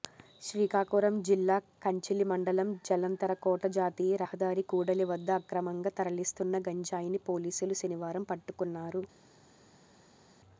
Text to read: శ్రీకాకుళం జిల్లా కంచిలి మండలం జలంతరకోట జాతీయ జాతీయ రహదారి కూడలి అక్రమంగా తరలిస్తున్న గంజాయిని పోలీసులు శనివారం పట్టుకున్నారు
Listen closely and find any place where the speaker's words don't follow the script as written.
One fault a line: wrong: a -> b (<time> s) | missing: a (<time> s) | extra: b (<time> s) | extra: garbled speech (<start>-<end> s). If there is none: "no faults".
missing: జాతీయ (4.2 s)
extra: వద్ద (5.1 s)